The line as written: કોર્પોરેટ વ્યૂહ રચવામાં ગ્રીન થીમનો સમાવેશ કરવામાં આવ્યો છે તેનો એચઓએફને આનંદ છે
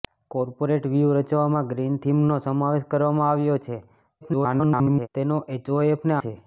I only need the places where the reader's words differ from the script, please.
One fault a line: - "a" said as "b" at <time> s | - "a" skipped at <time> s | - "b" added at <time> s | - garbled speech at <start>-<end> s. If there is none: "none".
- garbled speech at 4.2-5.1 s
- "આનંદ" skipped at 6.2 s